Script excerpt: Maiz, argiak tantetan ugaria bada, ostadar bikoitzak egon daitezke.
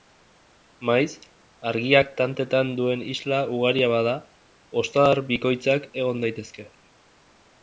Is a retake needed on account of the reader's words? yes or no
yes